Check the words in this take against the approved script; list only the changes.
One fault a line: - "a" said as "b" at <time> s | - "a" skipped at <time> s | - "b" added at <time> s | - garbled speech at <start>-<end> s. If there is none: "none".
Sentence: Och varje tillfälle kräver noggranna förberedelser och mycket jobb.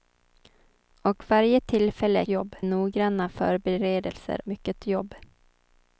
- "kräver" said as "jobb" at 2.3 s
- "och" skipped at 4.4 s